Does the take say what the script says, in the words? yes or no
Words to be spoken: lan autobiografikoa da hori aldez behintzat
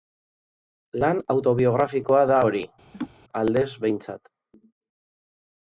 yes